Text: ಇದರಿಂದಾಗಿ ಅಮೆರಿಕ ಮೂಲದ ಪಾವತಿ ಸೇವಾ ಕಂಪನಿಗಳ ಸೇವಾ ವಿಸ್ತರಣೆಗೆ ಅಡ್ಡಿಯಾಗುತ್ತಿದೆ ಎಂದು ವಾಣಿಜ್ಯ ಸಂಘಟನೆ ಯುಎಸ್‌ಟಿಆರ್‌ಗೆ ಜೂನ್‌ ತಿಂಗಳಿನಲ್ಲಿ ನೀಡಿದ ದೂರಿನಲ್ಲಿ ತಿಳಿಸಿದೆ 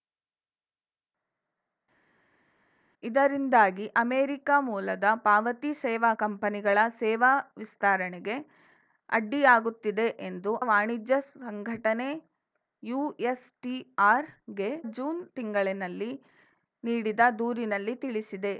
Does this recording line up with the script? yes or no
yes